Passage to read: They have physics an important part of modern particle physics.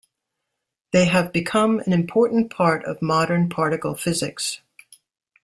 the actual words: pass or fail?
fail